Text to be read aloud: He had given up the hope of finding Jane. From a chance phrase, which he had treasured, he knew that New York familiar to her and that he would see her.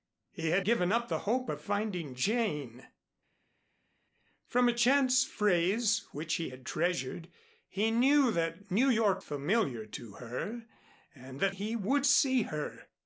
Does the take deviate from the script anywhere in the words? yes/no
no